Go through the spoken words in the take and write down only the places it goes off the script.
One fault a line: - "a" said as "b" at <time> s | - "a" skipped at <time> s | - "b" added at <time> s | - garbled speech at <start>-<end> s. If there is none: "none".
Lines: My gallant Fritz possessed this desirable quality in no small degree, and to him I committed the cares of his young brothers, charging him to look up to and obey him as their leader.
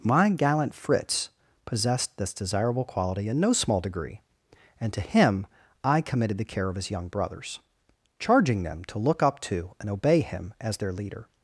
- "cares" said as "care" at 6.4 s
- "him" said as "them" at 8.6 s